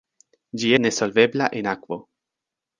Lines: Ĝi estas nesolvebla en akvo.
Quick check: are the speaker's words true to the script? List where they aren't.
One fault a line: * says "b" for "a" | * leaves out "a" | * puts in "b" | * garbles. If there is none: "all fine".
* leaves out "estas"